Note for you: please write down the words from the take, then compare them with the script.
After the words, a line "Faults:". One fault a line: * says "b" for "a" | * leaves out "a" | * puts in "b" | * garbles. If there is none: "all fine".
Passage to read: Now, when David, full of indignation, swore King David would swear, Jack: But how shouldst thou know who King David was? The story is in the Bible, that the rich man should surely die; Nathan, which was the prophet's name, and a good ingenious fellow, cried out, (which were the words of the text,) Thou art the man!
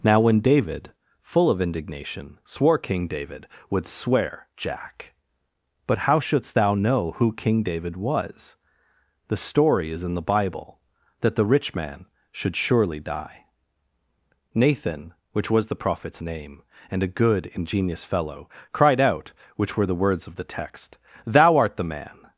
Now, when David, full of indignation, swore King David would swear, Jack: But how shouldst thou know who King David was? The story is in the Bible, that the rich man should surely die; Nathan, which was the prophet's name, and a good ingenious fellow, cried out, (which were the words of the text,) Thou art the man!
Faults:
all fine